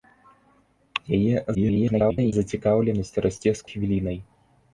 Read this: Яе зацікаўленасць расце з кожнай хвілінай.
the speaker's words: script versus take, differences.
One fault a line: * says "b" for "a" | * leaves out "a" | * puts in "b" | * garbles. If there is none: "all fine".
* garbles
* leaves out "кожнай"